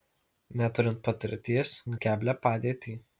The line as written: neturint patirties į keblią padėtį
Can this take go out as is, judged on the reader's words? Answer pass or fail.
pass